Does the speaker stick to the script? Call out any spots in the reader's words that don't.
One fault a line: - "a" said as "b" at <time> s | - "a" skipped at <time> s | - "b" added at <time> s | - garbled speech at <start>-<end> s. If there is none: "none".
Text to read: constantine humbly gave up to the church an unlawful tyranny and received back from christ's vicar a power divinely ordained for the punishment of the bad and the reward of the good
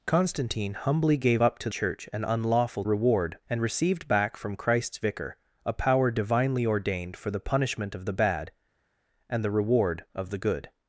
- "the" skipped at 1.7 s
- "tyranny" said as "reward" at 2.8 s